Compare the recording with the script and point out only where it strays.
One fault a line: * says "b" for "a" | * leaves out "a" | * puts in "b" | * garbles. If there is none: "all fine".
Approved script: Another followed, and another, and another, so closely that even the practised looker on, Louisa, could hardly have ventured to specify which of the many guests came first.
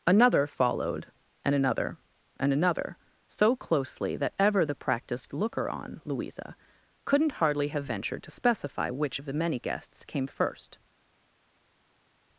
* says "ever" for "even"
* says "couldn't" for "could"